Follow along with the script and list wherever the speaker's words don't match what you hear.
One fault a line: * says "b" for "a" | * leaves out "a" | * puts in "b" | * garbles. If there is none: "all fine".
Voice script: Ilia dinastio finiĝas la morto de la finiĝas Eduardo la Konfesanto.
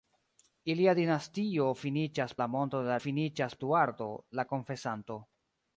all fine